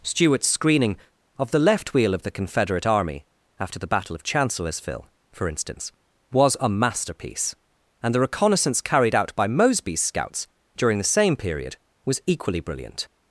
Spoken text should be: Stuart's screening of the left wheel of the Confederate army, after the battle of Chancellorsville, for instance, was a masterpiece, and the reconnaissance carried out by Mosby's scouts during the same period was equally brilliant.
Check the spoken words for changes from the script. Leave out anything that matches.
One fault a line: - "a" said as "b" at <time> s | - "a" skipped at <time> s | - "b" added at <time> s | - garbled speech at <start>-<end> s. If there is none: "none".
none